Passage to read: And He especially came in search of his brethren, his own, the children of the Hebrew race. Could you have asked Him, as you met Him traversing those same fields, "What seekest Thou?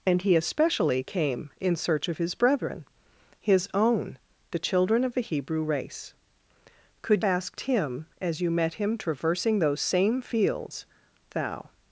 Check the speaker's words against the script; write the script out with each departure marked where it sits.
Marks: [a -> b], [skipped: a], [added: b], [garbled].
And He especially came in search of his brethren, his own, the children of the Hebrew race. Could [skipped: you have] asked Him, as you met Him traversing those same fields, [skipped: "What seekest] Thou?